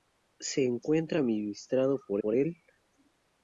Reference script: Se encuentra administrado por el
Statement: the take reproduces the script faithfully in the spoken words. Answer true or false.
false